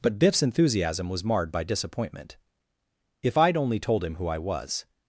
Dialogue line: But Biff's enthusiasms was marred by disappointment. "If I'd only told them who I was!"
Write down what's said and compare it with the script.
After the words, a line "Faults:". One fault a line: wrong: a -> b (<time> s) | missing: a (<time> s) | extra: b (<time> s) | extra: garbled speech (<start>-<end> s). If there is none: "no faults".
But Biff's enthusiasm was marred by disappointment. "If I'd only told him who I was!"
Faults:
wrong: enthusiasms -> enthusiasm (0.4 s)
wrong: them -> him (4.0 s)